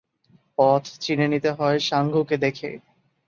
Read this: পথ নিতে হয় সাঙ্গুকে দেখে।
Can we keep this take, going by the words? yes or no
no